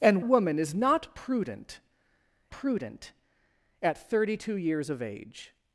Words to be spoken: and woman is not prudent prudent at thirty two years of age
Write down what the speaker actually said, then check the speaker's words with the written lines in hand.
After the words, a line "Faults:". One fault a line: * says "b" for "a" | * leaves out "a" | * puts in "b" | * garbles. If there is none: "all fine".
and woman is not prudent prudent at thirty two years of age
Faults:
all fine